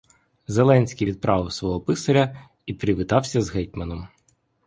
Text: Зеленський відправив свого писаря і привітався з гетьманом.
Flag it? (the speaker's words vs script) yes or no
no